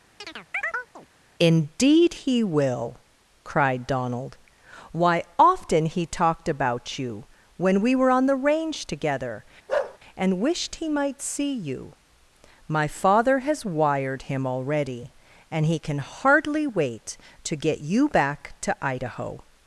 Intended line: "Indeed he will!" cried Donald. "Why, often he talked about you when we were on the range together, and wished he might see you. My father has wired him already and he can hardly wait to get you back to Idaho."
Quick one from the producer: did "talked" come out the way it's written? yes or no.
yes